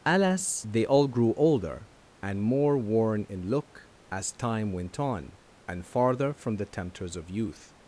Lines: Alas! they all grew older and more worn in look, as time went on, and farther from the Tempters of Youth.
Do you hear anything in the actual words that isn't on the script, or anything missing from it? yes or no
no